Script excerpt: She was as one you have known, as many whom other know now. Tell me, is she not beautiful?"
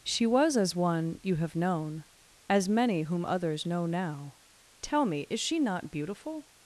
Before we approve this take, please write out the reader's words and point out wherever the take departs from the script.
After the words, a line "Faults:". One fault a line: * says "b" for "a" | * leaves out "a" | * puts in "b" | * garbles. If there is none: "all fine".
She was as one you have known, as many whom others know now. Tell me, is she not beautiful?"
Faults:
* says "others" for "other"